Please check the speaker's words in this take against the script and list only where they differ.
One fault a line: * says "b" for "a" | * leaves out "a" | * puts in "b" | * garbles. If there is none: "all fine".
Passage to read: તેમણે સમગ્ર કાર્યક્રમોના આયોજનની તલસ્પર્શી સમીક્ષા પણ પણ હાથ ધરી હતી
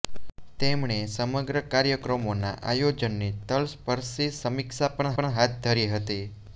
all fine